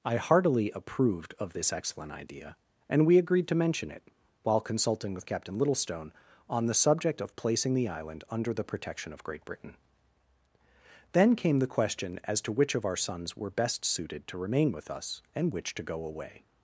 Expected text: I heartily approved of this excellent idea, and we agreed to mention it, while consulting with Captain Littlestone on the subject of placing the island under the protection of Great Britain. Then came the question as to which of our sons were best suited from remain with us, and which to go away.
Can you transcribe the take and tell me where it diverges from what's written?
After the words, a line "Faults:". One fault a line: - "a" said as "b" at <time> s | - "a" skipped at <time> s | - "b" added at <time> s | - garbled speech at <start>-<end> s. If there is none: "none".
I heartily approved of this excellent idea, and we agreed to mention it, while consulting with Captain Littlestone on the subject of placing the island under the protection of Great Britain. Then came the question as to which of our sons were best suited to remain with us, and which to go away.
Faults:
- "from" said as "to" at 14.3 s